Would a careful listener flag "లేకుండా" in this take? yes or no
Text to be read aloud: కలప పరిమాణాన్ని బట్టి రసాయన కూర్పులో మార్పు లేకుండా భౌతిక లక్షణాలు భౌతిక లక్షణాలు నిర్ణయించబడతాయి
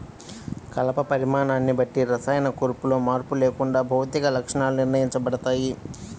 no